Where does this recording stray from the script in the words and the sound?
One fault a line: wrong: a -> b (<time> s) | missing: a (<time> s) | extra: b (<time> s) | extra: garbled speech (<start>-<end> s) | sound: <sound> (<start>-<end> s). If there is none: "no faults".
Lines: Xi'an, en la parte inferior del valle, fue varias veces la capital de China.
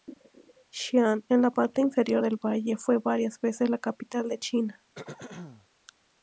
sound: throat clearing (4.9-5.7 s)